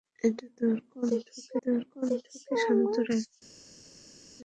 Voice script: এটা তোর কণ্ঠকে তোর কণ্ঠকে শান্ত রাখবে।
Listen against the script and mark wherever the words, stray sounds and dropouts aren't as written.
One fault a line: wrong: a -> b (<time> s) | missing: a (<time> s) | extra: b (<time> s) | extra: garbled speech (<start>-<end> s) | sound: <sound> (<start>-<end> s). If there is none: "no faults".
no faults